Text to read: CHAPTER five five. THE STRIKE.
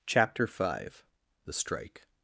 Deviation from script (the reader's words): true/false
true